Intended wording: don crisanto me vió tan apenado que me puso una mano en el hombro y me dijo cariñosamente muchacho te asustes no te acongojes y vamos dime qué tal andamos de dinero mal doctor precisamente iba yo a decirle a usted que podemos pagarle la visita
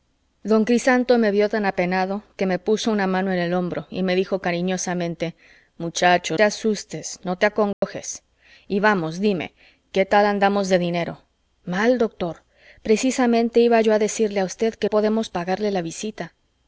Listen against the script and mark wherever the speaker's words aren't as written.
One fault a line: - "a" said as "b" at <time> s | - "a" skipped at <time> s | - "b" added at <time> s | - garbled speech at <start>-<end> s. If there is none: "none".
none